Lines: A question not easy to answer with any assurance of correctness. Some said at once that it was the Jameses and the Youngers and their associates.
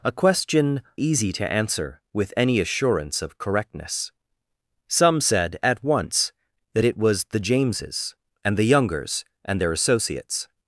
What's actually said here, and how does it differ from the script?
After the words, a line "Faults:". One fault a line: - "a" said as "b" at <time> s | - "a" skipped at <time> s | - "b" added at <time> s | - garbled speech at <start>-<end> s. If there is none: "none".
A question easy to answer with any assurance of correctness. Some said at once that it was the Jameses and the Youngers and their associates.
Faults:
- "not" skipped at 0.8 s